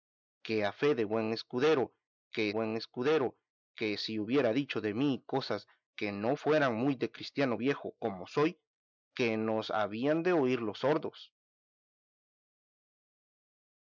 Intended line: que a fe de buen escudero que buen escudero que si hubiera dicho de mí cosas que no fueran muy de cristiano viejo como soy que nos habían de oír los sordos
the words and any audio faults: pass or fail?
pass